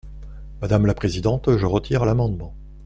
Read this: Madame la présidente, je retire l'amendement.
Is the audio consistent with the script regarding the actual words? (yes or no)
yes